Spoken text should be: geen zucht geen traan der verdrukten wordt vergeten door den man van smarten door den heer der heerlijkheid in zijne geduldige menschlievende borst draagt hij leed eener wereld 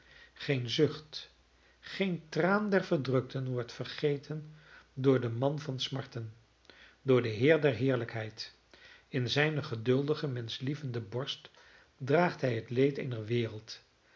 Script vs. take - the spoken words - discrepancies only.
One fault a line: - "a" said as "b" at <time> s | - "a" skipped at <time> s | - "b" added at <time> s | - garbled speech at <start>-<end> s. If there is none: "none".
- "het" added at 12.6 s